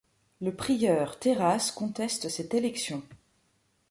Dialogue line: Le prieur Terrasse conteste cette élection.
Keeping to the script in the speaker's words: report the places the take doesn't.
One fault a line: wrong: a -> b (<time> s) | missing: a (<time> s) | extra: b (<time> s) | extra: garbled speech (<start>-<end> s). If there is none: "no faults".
no faults